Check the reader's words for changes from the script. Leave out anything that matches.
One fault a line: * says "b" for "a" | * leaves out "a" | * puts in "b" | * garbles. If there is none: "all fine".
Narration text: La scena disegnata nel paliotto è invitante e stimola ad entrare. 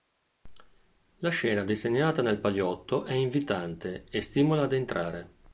all fine